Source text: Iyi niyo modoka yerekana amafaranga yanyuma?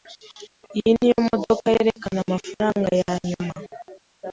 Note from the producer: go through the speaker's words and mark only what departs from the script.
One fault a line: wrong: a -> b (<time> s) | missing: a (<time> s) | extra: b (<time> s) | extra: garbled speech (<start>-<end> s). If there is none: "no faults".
no faults